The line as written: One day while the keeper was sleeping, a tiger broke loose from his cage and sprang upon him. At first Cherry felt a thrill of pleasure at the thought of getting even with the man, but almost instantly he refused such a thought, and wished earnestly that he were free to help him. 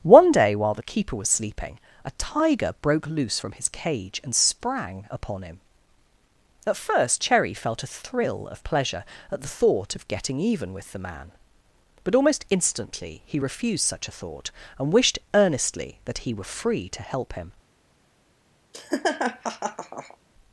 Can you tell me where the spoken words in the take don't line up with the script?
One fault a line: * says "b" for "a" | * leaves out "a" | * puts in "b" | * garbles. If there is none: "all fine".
all fine